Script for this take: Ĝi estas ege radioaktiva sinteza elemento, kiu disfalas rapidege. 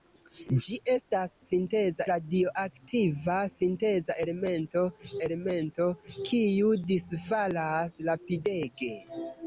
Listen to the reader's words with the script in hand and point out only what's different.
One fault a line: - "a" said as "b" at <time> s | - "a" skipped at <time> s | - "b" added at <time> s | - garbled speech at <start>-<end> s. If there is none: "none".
- "ege" said as "sinteza" at 1.5 s
- "elemento" added at 5.3 s